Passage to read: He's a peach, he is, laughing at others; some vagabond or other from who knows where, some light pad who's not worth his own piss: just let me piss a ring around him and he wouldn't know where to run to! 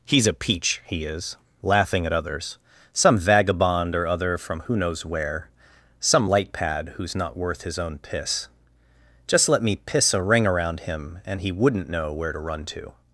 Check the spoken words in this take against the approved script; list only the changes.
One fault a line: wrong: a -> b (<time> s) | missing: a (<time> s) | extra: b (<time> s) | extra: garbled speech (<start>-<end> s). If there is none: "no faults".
no faults